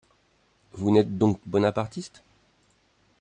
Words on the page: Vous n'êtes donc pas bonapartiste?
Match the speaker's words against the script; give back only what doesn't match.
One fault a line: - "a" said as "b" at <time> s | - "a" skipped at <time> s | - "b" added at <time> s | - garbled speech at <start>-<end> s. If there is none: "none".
- "pas" skipped at 1.4 s